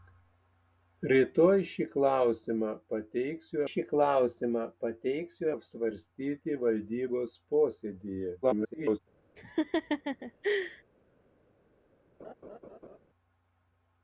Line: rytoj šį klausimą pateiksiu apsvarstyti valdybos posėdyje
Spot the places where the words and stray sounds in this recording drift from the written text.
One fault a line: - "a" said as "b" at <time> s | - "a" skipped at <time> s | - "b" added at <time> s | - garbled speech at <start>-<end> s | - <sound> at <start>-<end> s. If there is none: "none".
- "šį klausimą pateiksiu" added at 3.7 s
- garbled speech at 8.4-9.0 s
- laugh at 9.4-10.8 s
- laugh at 12.2-13.0 s